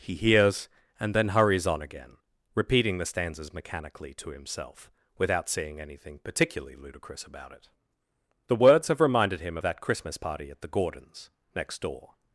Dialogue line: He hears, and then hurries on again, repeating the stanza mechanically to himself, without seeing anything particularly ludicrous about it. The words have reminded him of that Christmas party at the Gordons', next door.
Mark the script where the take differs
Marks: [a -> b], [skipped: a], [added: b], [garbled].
He hears, and then hurries on again, repeating the [stanza -> stanzas] mechanically to himself, without seeing anything particularly ludicrous about it. The words have reminded him of that Christmas party at the Gordons', next door.